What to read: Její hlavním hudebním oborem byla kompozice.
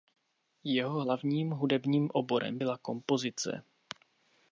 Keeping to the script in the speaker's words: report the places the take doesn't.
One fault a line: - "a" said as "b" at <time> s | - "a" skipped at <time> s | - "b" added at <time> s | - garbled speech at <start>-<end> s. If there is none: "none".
- "Její" said as "Jeho" at 0.6 s